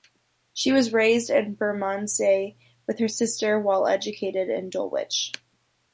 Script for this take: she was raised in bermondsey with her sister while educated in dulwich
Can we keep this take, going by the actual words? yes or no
yes